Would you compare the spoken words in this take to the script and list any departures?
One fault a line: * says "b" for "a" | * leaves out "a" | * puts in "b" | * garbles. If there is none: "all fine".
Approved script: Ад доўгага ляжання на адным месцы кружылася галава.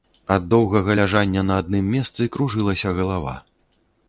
all fine